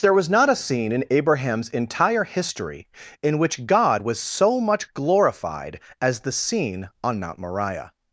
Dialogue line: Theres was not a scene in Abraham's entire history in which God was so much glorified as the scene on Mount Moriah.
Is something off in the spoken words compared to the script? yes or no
yes